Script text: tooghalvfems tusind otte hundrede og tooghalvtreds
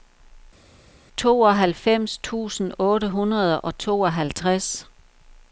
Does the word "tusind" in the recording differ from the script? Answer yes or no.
no